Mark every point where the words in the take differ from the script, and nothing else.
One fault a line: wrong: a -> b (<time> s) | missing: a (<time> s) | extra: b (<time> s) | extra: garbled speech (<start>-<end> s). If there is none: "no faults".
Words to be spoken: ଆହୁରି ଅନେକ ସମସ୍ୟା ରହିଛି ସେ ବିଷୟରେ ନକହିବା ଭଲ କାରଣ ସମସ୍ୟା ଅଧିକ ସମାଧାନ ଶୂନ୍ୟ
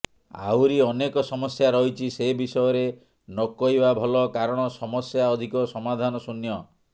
no faults